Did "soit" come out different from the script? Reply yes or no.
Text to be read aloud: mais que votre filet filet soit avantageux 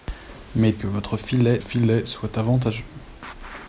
no